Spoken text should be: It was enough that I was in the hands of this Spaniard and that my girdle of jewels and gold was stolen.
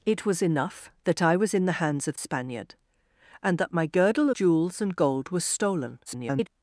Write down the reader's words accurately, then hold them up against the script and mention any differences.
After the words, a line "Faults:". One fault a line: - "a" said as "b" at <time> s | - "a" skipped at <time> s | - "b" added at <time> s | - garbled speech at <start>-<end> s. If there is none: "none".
It was enough that I was in the hands of Spaniard and that my girdle jewels and gold was stolen. [garbled]
Faults:
- "this" skipped at 2.2 s
- "of" skipped at 4.3 s
- garbled speech at 6.1-6.5 s